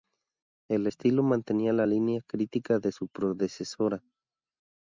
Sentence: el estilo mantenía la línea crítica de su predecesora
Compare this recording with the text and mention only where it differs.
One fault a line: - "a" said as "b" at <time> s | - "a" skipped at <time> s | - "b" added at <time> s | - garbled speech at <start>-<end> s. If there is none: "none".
none